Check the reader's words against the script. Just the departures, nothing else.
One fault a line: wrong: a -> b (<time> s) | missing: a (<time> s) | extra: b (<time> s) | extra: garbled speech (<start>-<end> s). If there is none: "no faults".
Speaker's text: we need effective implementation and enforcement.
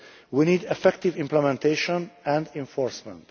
no faults